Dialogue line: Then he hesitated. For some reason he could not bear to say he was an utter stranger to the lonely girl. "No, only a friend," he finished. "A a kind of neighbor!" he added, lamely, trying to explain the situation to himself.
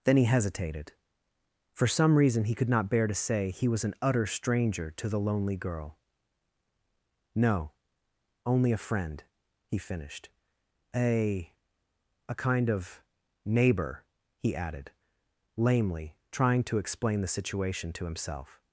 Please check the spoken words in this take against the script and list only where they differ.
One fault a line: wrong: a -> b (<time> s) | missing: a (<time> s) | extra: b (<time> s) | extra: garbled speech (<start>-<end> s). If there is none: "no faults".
no faults